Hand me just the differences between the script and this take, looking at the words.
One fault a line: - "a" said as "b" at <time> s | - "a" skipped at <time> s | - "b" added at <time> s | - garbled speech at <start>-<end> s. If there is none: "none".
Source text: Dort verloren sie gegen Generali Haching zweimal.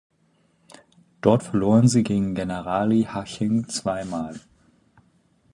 none